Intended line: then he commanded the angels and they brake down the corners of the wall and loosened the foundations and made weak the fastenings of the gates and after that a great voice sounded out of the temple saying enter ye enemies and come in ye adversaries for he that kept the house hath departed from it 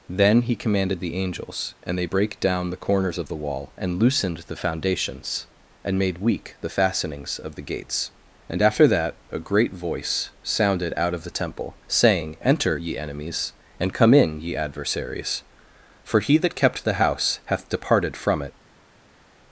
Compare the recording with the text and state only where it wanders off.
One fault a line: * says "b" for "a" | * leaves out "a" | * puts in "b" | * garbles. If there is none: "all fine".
all fine